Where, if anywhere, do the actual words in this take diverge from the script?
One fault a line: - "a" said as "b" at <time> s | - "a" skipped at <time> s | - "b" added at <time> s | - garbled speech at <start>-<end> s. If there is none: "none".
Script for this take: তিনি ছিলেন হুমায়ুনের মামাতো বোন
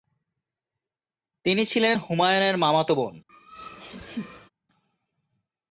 none